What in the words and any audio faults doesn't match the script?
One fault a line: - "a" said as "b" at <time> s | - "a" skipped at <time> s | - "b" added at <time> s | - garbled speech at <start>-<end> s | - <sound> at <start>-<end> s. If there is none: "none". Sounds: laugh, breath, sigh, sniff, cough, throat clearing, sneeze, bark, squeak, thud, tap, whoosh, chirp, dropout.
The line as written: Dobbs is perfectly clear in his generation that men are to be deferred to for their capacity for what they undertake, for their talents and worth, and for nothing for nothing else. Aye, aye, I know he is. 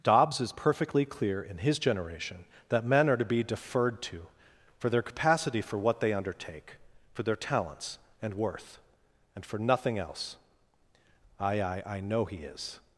- "for nothing" skipped at 10.0 s